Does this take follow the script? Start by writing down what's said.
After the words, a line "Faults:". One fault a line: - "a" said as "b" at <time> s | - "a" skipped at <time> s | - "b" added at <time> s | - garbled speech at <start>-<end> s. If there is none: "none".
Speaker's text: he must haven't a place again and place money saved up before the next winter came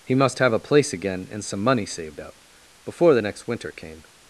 he must have a place again and some money saved up before the next winter came
Faults:
- "haven't" said as "have" at 0.4 s
- "place" said as "some" at 1.4 s